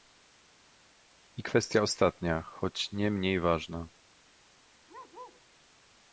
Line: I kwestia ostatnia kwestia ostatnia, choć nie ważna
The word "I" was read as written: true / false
true